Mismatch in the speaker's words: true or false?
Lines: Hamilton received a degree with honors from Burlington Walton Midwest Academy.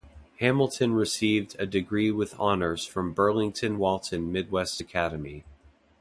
false